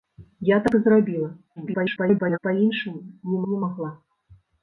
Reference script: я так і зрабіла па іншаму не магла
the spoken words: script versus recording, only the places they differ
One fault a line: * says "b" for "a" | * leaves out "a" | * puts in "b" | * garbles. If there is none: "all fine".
* garbles
* puts in "не"